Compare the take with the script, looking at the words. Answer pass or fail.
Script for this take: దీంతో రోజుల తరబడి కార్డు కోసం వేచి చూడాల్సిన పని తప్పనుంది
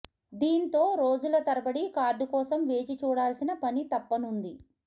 pass